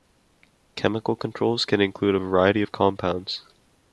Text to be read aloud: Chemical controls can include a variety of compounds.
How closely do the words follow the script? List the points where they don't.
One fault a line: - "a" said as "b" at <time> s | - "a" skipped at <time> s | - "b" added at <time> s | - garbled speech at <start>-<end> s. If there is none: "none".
none